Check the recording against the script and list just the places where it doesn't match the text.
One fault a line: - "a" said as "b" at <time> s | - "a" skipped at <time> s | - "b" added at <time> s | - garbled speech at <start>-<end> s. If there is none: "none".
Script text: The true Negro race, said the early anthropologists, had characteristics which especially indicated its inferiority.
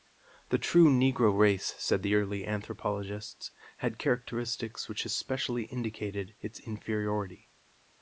none